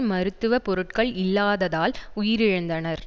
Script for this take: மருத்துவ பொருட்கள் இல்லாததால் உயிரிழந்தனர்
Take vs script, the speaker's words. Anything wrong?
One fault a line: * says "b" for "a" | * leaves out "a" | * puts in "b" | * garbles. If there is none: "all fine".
all fine